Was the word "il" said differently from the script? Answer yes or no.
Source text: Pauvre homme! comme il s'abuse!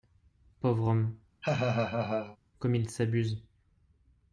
no